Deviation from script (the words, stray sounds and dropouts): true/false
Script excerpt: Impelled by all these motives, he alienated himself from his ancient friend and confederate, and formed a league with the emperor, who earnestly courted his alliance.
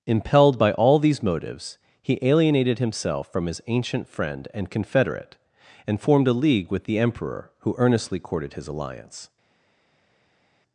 false